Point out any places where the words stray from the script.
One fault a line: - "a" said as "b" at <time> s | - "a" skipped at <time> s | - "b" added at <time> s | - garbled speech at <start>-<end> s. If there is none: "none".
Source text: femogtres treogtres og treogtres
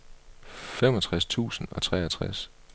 - "treogtres" said as "tusind" at 1.2 s